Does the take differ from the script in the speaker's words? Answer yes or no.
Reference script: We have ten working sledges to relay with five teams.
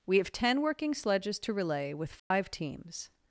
no